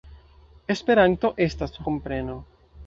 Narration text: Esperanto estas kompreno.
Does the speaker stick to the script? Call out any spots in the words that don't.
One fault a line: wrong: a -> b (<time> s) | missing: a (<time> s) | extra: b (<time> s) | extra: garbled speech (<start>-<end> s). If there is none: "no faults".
no faults